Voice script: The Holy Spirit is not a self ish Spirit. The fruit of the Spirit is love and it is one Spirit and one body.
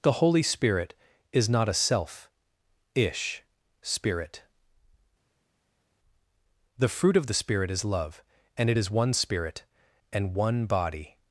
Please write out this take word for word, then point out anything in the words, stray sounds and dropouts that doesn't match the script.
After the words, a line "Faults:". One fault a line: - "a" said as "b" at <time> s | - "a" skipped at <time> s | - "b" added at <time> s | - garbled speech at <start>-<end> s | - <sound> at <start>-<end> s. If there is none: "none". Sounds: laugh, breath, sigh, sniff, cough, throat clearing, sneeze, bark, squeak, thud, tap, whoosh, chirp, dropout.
The Holy Spirit is not a self ish Spirit. The fruit of the Spirit is love and it is one Spirit and one body.
Faults:
none